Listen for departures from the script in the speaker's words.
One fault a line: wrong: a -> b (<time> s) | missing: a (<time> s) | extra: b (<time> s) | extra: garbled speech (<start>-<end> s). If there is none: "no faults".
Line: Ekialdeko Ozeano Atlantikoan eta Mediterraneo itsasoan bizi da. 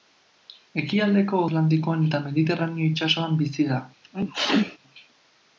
missing: Ozeano (1.4 s)